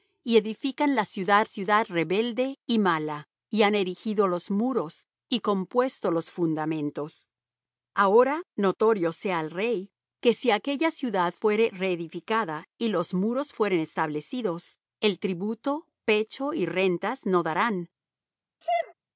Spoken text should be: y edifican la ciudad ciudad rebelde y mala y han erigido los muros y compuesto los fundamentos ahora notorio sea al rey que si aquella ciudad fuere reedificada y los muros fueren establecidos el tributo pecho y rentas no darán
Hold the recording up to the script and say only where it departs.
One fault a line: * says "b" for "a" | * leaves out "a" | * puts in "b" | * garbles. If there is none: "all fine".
all fine